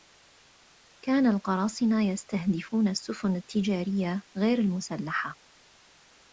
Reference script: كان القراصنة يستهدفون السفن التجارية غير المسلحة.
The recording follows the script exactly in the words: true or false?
true